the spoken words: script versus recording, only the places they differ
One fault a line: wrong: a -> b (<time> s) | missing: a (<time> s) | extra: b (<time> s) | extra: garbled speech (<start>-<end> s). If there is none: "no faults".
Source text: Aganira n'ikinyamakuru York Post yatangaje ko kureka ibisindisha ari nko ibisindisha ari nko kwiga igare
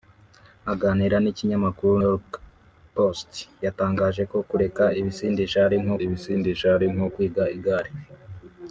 no faults